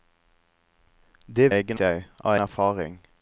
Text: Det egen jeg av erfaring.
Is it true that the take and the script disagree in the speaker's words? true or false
false